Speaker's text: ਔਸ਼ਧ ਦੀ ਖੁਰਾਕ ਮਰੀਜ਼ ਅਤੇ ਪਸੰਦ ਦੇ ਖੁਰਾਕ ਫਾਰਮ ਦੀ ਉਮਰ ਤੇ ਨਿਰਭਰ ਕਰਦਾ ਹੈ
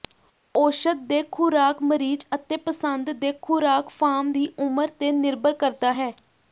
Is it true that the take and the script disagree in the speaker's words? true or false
true